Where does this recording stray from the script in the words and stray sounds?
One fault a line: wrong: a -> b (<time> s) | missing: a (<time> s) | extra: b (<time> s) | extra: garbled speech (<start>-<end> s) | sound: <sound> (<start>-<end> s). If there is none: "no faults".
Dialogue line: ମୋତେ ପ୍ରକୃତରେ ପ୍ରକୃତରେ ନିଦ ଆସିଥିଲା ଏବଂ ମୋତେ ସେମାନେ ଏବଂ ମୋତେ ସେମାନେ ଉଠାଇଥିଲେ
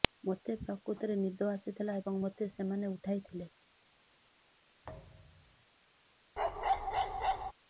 missing: ପ୍ରକୃତରେ (1.2 s)
missing: ଏବଂ ମୋତେ ସେମାନେ (2.9 s)
sound: thud (4.8-5.7 s)
sound: bark (6.4-7.5 s)